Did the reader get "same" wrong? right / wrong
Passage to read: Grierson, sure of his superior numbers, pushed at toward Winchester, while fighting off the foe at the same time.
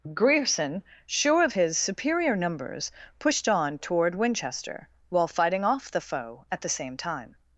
right